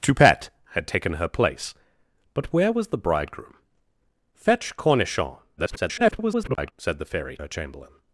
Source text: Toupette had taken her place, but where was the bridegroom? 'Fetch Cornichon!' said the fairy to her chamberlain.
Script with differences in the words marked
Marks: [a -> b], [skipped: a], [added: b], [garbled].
Toupette had taken her place, but where was the bridegroom? 'Fetch Cornichon!' [garbled] said the fairy [skipped: to] her chamberlain.